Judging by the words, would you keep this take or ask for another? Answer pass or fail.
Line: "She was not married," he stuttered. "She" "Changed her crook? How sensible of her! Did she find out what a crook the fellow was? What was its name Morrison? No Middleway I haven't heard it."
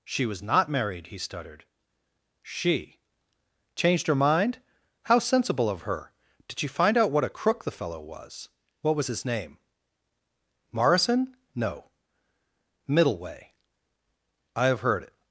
fail